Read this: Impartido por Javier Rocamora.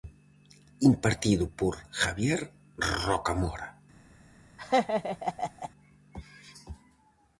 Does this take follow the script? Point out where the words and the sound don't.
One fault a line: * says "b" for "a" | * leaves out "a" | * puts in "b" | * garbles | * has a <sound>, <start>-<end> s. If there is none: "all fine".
* has a laugh, 4.6-5.7 s